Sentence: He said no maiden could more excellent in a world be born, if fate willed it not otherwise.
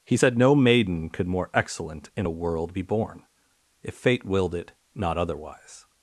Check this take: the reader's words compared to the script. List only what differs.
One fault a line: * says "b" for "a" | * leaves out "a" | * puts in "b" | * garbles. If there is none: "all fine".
all fine